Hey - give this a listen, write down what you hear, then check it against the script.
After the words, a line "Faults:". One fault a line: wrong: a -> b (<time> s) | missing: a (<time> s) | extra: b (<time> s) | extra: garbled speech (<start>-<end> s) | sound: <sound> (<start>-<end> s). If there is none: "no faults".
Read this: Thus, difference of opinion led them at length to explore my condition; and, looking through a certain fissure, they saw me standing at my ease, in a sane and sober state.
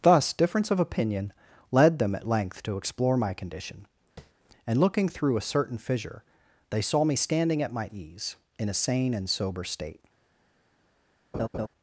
Thus, difference of opinion led them at length to explore my condition; and, looking through a certain fissure, they saw me standing at my ease, in a sane and sober state.
Faults:
sound: tap (4.2-4.3 s)
sound: laugh (11.3-11.7 s)